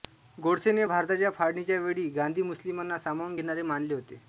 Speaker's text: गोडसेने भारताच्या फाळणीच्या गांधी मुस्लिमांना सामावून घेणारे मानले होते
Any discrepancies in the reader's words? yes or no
yes